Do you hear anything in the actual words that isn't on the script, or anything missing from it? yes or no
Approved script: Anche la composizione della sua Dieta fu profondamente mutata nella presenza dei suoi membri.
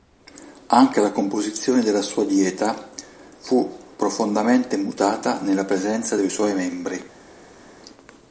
no